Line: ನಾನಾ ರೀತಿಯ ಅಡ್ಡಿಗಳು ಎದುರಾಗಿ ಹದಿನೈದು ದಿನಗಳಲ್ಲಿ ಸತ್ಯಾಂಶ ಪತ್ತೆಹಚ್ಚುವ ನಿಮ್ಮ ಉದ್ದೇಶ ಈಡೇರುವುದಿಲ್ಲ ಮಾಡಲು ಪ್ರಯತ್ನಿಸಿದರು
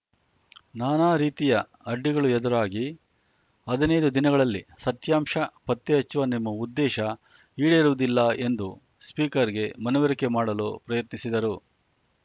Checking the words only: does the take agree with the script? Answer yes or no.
no